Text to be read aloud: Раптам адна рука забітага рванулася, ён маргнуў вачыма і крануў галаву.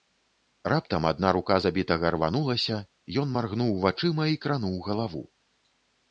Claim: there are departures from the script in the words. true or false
false